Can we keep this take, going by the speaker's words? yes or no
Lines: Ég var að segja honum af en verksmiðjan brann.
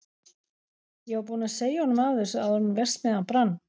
no